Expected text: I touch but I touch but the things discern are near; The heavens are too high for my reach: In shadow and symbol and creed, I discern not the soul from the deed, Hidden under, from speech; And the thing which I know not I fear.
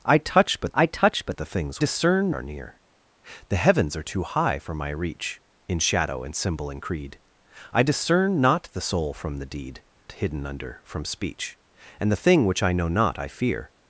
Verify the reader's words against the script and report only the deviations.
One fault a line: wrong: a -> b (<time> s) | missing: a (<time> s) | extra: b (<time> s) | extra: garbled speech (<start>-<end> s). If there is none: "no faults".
no faults